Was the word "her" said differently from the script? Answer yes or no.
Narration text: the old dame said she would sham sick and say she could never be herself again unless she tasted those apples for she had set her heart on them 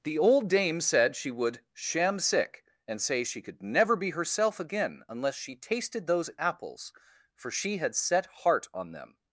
yes